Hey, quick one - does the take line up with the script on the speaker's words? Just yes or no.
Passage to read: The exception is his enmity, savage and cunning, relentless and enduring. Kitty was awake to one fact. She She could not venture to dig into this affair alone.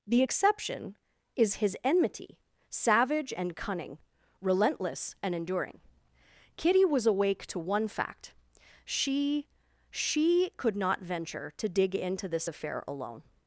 yes